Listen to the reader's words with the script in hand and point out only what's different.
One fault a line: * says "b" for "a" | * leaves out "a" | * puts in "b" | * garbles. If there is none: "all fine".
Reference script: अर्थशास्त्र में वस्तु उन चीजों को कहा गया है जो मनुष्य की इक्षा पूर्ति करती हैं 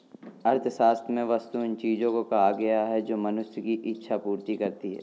all fine